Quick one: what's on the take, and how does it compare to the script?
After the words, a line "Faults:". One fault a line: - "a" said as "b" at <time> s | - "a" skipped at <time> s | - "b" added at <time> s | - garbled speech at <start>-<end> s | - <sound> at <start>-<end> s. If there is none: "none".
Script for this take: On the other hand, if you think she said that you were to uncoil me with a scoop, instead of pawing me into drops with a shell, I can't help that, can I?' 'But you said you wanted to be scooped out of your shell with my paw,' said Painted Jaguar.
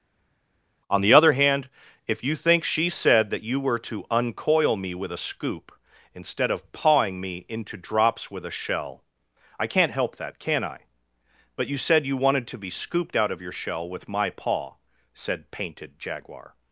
On the other hand, if you think she said that you were to uncoil me with a scoop, instead of pawing me into drops with a shell, I can't help that, can I?' 'But you said you wanted to be scooped out of your shell with my paw,' said Painted Jaguar.
Faults:
none